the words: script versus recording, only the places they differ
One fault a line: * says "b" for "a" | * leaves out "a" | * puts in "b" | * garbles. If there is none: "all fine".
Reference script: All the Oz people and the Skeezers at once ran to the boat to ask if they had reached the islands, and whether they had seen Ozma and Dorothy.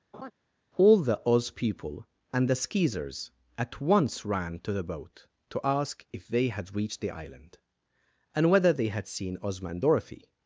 * says "island" for "islands"